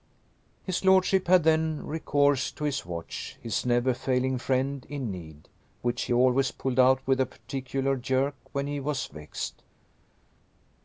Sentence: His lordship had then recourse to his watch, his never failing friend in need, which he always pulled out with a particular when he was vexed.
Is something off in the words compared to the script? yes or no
yes